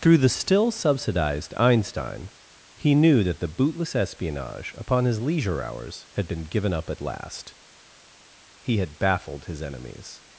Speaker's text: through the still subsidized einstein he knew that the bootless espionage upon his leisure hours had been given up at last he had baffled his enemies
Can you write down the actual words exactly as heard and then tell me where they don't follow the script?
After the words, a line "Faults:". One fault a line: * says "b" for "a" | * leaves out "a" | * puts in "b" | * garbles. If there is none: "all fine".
through the still subsidized einstein he knew that the bootless espionage upon his leisure hours had been given up at last he had baffled his enemies
Faults:
all fine